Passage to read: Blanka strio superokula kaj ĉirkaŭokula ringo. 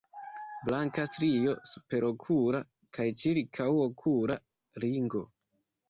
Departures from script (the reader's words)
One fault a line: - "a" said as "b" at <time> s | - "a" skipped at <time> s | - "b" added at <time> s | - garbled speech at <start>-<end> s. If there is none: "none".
none